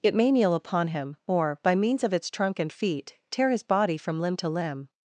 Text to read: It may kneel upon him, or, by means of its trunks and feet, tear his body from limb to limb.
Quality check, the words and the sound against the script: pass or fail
fail